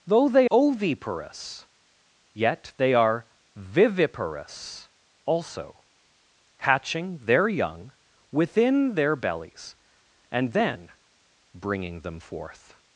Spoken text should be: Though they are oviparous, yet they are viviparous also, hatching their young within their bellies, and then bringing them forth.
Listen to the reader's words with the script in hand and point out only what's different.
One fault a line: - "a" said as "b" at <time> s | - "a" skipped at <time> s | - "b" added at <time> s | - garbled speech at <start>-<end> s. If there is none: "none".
- "are" skipped at 0.5 s